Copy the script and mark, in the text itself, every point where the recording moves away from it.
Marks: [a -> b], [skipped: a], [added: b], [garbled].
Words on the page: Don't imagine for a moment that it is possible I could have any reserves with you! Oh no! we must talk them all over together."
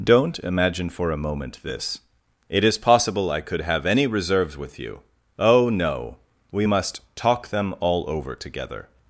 Don't imagine for a moment [that -> this] it is possible I could have any reserves with you! Oh no! we must talk them all over together."